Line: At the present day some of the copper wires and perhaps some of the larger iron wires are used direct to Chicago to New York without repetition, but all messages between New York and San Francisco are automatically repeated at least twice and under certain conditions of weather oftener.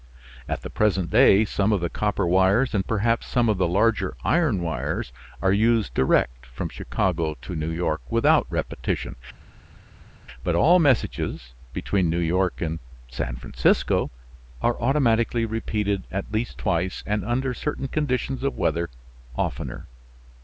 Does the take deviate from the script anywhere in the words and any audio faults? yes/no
yes